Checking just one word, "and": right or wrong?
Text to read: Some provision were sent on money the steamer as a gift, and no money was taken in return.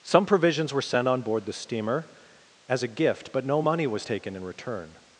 wrong